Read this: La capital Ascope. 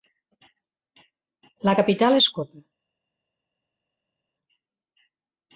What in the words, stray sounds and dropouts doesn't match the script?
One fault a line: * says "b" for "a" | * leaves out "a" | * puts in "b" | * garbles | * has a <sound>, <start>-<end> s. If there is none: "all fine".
all fine